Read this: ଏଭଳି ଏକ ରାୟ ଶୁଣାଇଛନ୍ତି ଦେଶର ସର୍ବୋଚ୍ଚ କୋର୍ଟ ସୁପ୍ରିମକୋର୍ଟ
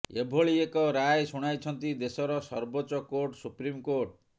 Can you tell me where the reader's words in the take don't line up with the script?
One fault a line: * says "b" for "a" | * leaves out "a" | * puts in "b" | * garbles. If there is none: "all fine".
all fine